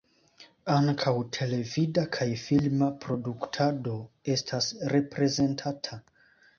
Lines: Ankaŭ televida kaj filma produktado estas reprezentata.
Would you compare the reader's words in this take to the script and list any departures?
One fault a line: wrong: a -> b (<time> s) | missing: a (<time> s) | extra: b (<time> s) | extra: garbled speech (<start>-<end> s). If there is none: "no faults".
no faults